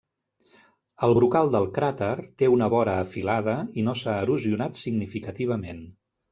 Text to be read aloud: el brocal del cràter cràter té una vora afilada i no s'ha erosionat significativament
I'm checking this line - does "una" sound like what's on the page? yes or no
yes